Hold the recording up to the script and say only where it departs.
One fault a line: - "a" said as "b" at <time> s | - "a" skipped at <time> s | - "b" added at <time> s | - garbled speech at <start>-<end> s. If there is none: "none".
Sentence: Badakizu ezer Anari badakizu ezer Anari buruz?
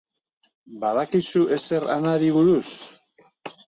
- "badakizu ezer Anari" skipped at 2.4 s